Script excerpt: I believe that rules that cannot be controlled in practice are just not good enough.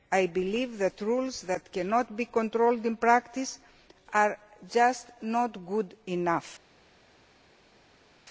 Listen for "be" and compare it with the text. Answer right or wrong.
right